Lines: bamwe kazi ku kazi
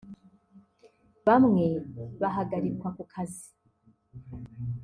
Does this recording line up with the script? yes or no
no